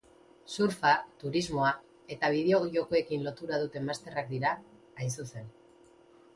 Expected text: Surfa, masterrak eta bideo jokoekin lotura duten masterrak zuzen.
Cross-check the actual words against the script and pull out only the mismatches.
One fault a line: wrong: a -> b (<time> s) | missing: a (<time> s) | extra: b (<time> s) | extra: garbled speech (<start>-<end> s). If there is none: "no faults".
wrong: masterrak -> turismoa (1.2 s)
extra: dira hain (4.3 s)